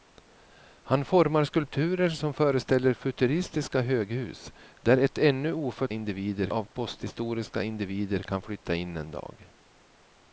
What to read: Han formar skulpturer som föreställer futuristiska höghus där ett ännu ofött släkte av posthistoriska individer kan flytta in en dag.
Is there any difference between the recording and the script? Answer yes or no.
yes